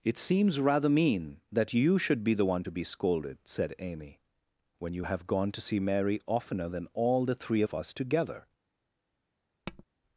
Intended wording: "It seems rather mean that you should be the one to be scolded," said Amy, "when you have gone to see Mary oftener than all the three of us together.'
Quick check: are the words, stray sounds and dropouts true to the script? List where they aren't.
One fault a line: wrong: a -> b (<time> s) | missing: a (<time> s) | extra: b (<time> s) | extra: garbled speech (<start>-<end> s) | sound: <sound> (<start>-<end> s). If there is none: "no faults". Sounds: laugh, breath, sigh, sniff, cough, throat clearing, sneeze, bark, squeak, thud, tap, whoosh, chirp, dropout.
sound: tap (9.7-9.8 s)